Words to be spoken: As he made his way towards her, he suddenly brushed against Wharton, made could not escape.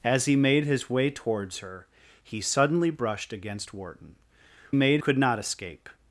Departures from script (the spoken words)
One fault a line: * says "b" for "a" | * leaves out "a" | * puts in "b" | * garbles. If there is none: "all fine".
all fine